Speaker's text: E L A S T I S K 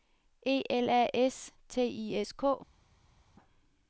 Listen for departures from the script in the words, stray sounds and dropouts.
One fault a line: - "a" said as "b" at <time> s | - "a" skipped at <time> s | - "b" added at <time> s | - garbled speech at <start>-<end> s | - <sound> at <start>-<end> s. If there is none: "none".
none